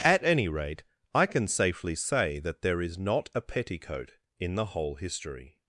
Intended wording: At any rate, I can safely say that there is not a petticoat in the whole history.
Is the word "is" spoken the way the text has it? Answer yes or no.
yes